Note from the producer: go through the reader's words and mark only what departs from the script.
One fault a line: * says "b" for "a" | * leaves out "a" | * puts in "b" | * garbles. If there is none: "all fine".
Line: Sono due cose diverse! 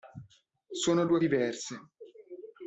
* leaves out "cose"